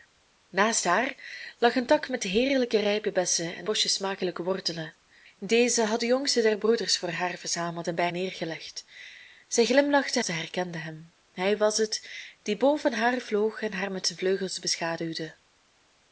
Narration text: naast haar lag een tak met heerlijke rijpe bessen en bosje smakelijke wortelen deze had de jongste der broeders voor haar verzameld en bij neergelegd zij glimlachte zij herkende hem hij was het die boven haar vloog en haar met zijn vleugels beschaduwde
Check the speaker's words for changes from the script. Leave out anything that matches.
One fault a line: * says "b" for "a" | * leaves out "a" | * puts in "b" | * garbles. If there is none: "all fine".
all fine